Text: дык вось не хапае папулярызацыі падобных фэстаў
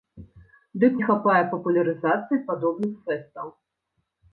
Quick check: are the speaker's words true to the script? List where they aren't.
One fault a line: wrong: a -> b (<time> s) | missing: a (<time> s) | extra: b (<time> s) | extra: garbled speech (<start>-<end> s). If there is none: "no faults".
missing: вось (0.9 s)